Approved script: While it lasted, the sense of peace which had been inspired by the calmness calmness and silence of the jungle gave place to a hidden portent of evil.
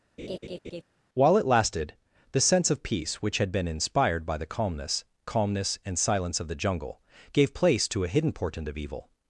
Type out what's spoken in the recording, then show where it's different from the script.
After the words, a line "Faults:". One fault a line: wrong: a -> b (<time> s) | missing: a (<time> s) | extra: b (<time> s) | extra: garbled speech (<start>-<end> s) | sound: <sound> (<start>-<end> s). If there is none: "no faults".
While it lasted, the sense of peace which had been inspired by the calmness calmness and silence of the jungle gave place to a hidden portent of evil.
Faults:
sound: laugh (0.2-0.8 s)